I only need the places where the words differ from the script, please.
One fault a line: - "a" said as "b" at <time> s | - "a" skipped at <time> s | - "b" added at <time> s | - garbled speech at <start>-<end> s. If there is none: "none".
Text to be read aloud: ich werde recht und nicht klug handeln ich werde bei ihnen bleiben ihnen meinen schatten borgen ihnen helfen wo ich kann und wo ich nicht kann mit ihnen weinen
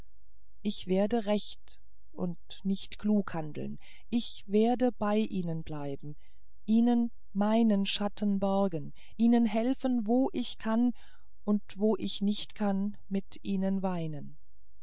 none